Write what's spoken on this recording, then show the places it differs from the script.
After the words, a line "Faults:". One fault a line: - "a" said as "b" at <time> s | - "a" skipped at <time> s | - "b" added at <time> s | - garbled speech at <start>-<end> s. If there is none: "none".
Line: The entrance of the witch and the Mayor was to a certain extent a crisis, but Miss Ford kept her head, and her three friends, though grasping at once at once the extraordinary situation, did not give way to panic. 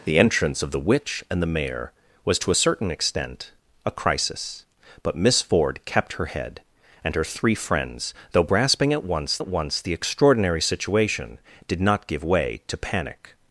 The entrance of the witch and the Mayor was to a certain extent a crisis, but Miss Ford kept her head, and her three friends, though grasping at once at once the extraordinary situation, did not give way to panic.
Faults:
none